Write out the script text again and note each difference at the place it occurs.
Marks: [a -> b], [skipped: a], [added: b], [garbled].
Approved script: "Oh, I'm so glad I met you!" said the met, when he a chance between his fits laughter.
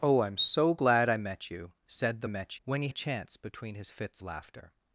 "Oh, I'm so glad I met you!" said the met, when he a chance between his fits laughter.